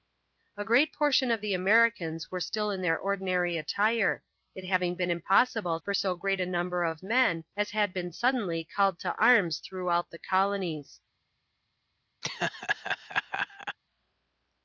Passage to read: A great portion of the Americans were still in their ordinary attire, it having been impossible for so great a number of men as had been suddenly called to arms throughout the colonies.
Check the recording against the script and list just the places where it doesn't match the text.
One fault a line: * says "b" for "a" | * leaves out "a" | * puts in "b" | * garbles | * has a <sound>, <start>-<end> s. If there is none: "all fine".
* has a laugh, 12.2-13.8 s